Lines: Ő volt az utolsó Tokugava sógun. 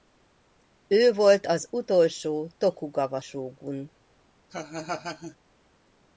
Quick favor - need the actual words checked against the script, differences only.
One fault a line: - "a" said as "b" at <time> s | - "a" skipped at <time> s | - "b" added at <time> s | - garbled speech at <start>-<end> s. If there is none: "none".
none